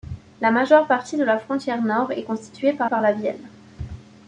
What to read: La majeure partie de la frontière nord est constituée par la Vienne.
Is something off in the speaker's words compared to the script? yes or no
yes